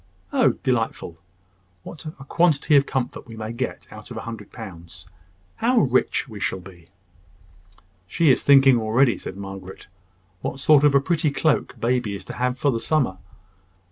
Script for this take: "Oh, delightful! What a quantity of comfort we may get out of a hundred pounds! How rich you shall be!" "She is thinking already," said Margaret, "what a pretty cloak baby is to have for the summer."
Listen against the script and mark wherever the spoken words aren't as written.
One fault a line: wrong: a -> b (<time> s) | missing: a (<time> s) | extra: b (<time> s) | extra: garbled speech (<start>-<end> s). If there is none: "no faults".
wrong: you -> we (6.3 s)
extra: sort of (10.6 s)